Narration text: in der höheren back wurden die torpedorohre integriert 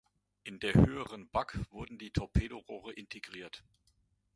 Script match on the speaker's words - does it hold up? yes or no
yes